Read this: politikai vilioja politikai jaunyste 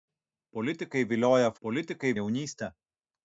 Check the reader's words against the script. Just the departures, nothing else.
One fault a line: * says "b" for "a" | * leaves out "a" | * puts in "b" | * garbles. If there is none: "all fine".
all fine